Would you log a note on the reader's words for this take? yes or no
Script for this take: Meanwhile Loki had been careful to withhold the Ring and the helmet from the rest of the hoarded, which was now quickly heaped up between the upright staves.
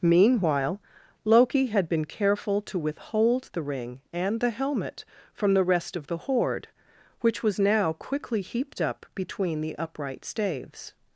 yes